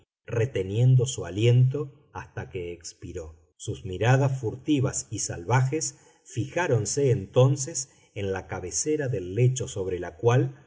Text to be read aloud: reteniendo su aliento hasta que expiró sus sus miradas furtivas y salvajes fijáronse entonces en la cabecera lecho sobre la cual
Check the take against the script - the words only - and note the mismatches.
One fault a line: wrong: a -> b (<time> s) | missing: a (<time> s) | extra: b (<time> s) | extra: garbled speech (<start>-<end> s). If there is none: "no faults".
missing: sus (3.8 s)
extra: del (9.1 s)